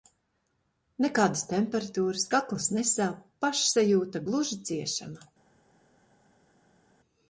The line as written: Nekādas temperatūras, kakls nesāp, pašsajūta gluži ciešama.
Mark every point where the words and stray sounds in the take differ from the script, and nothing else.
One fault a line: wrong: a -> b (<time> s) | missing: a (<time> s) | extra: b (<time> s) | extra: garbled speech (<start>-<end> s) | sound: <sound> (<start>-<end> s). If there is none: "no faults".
no faults